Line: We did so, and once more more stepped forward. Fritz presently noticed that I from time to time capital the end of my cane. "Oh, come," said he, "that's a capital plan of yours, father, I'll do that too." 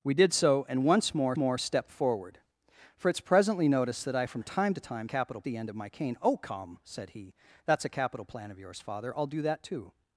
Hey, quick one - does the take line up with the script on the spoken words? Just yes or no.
yes